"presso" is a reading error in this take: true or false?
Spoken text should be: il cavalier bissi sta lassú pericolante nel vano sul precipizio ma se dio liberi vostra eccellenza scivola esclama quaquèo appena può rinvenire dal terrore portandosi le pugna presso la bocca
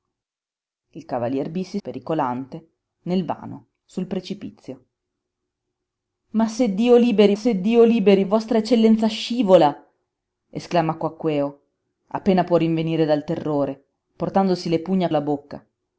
true